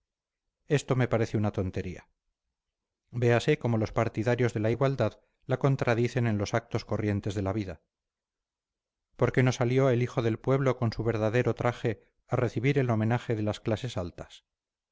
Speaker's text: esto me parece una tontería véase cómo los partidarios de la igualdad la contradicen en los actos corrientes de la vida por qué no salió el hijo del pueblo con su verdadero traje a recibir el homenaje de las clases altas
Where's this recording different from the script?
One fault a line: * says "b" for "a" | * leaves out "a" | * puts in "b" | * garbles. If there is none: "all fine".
all fine